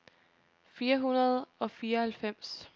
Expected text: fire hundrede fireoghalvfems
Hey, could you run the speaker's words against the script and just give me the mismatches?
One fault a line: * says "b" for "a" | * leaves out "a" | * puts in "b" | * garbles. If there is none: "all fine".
* puts in "og"